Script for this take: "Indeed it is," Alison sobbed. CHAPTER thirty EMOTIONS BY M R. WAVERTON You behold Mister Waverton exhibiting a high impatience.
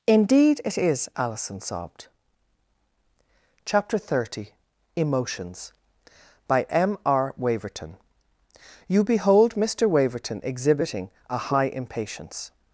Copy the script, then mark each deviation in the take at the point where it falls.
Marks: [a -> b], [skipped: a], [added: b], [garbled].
"Indeed it is," Alison sobbed. CHAPTER thirty EMOTIONS BY M R. WAVERTON You behold Mister Waverton exhibiting a high impatience.